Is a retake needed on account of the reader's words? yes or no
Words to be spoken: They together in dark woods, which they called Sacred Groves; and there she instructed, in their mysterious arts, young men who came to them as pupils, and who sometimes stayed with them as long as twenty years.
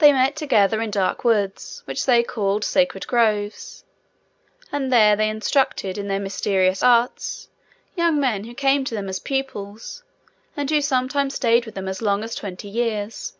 yes